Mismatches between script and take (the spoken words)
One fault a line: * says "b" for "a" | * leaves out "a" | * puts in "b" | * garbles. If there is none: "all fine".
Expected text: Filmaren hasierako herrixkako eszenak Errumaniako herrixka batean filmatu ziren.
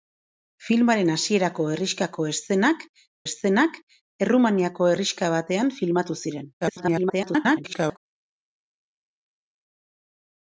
* puts in "eszenak"
* garbles